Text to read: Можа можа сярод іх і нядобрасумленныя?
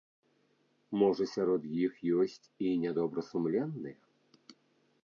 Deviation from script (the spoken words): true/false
true